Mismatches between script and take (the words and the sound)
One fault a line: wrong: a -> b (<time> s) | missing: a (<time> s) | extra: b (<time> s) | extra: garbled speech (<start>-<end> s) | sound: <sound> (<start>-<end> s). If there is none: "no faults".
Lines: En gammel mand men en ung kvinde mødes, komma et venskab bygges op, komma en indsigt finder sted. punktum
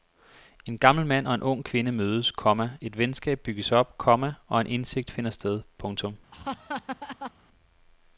wrong: men -> og (1.2 s)
extra: og (4.5 s)
sound: laugh (6.3-7.3 s)